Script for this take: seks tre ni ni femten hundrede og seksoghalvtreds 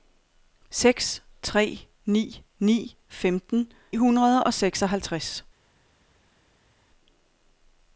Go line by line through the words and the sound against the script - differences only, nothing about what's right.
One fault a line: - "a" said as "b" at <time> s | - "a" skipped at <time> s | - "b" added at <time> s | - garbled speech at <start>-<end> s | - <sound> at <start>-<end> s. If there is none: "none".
none